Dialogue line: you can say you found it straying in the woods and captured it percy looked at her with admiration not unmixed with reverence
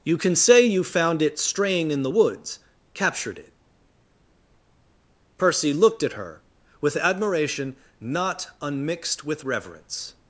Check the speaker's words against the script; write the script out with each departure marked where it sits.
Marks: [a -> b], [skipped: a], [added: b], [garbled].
you can say you found it straying in the woods [skipped: and] captured it percy looked at her with admiration not unmixed with reverence